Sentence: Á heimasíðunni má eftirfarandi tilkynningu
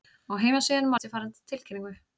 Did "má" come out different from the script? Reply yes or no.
no